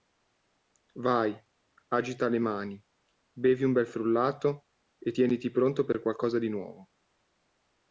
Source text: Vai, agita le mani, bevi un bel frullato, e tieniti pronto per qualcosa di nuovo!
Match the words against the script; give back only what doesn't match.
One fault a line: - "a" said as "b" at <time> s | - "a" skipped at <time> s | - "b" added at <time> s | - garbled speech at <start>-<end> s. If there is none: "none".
none